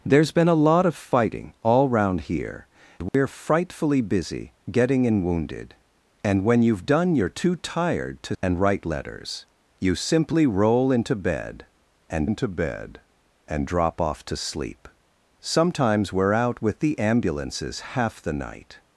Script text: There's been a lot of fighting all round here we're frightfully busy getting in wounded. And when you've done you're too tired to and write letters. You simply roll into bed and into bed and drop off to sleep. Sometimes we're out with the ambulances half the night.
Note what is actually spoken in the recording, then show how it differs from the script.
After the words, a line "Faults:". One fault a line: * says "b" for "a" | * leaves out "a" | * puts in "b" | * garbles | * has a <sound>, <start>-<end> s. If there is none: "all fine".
There's been a lot of fighting all round here we're frightfully busy getting in wounded. And when you've done you're too tired to and write letters. You simply roll into bed and into bed and drop off to sleep. Sometimes we're out with the ambulances half the night.
Faults:
* has a dropout, 3.1-3.1 s